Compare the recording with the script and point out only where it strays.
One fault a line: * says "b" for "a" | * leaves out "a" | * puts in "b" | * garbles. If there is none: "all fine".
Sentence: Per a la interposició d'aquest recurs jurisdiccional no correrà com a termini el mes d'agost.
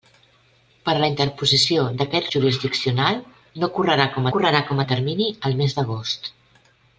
* leaves out "recurs"
* puts in "correrà com"